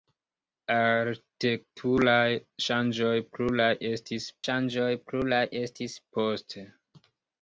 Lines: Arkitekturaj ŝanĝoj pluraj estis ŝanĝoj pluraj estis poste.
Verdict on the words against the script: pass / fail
pass